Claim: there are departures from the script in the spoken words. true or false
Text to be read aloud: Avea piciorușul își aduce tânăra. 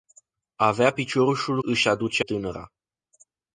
false